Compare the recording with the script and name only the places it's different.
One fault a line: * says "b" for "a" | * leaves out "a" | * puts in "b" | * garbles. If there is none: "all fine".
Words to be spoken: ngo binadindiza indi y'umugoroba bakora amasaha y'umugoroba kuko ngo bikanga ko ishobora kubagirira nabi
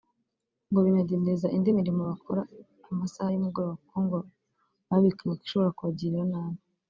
* says "mirimo" for "y'umugoroba"
* puts in "baba"